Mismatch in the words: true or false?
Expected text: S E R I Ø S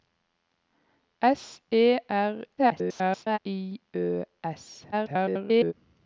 true